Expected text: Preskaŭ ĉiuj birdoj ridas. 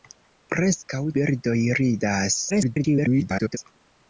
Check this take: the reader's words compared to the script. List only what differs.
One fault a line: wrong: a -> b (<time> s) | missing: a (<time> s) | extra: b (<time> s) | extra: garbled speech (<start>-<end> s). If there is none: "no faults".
missing: ĉiuj (1.0 s)
extra: garbled speech (2.5-3.6 s)